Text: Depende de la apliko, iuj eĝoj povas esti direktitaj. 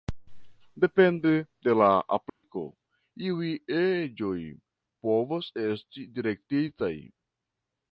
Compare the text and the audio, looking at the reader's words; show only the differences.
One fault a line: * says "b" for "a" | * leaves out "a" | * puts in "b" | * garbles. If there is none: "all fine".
all fine